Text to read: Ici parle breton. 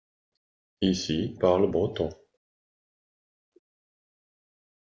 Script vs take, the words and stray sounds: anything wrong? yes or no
no